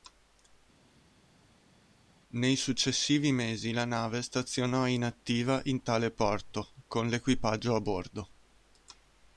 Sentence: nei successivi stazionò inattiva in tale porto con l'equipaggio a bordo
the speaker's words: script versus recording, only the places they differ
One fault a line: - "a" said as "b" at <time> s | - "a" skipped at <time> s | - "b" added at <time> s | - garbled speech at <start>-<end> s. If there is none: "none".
- "mesi la nave" added at 3.3 s